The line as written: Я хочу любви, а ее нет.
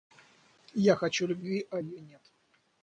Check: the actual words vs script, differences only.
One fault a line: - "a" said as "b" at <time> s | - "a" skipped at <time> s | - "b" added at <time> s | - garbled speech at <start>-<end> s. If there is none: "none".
none